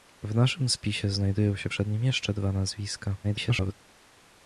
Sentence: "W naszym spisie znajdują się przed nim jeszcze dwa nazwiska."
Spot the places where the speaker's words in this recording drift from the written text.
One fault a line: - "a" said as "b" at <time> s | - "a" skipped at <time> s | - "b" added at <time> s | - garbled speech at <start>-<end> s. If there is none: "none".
- garbled speech at 3.2-3.7 s